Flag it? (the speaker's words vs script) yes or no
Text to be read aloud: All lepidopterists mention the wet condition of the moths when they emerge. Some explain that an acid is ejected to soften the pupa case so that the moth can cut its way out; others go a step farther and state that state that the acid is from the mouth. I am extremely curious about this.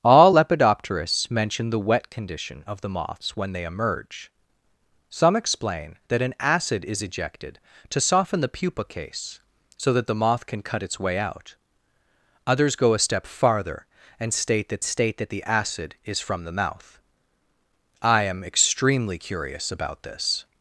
no